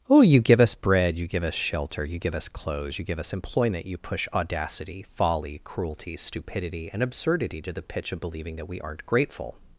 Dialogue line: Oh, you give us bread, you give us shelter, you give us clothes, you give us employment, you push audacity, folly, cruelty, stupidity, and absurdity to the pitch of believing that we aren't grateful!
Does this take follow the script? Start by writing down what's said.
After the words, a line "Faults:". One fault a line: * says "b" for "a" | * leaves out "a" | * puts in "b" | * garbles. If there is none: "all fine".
Oh, you give us bread, you give us shelter, you give us clothes, you give us employment, you push audacity, folly, cruelty, stupidity, and absurdity to the pitch of believing that we aren't grateful!
Faults:
all fine